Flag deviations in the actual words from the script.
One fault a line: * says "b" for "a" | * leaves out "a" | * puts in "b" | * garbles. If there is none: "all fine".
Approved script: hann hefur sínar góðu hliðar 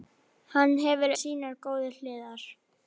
all fine